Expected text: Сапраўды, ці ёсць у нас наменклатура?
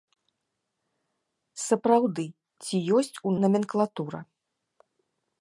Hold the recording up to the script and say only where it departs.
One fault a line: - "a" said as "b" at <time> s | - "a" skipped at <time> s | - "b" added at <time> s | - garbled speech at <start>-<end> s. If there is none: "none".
- "нас" skipped at 3.4 s